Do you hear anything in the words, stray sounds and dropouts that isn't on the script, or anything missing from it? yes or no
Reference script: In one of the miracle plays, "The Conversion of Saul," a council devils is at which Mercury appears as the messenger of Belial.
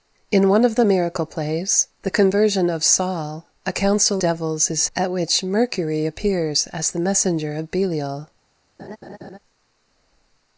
yes